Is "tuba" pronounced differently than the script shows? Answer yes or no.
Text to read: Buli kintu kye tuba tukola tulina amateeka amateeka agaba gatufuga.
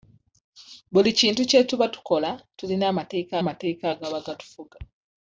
no